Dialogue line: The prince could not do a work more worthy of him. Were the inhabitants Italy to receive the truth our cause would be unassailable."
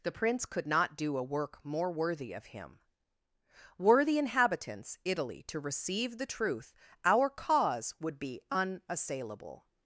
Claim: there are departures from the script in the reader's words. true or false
false